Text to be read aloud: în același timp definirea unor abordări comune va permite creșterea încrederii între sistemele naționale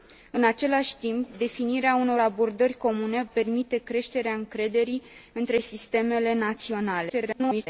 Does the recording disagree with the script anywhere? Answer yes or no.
yes